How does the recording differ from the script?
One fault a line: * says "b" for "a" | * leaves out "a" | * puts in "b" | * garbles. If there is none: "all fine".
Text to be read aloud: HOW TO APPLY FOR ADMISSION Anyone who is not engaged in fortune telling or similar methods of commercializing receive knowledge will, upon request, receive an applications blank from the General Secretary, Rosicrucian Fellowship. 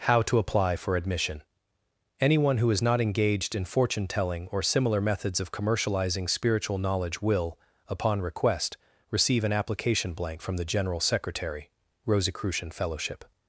* says "spiritual" for "receive"
* says "application" for "applications"